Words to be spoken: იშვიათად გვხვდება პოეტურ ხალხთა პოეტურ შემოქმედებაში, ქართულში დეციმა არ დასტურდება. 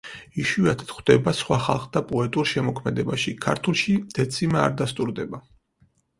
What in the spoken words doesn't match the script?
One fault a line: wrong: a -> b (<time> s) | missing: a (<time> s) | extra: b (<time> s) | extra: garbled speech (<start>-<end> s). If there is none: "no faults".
wrong: პოეტურ -> სხვა (1.4 s)